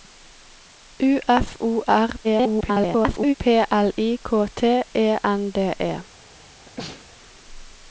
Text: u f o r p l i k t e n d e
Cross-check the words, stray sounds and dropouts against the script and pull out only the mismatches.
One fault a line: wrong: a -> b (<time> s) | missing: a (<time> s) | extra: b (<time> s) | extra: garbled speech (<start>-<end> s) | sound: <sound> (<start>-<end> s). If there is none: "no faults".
extra: garbled speech (2.2-3.3 s)
sound: sneeze (6.6-7.1 s)